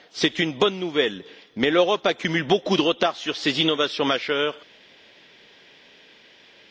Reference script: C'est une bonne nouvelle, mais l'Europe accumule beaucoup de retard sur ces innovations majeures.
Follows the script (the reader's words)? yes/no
yes